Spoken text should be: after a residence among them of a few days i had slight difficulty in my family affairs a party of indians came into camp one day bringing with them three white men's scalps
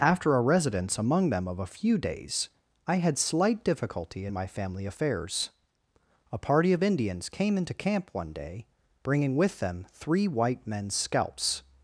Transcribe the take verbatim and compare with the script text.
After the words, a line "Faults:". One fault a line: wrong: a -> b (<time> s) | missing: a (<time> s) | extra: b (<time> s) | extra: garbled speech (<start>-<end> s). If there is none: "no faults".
after a residence among them of a few days i had slight difficulty in my family affairs a party of indians came into camp one day bringing with them three white men's scalps
Faults:
no faults